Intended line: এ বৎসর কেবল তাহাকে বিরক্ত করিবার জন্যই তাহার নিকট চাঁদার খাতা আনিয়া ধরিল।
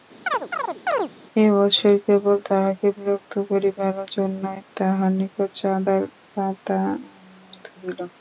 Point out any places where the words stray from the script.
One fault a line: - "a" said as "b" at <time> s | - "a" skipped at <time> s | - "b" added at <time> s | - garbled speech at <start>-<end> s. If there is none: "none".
none